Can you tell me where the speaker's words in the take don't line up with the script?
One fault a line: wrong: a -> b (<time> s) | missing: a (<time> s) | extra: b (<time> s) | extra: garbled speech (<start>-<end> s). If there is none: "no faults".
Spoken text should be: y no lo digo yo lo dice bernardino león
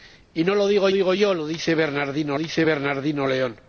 extra: digo (0.9 s)
extra: dice bernardino (2.4 s)